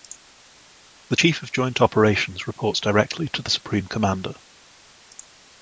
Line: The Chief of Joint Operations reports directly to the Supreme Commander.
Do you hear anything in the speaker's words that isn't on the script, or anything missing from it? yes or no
no